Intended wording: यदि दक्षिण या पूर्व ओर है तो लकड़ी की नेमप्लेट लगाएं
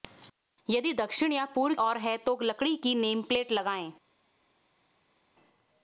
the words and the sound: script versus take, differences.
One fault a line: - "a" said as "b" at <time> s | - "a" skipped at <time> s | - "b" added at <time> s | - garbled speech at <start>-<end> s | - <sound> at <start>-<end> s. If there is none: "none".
none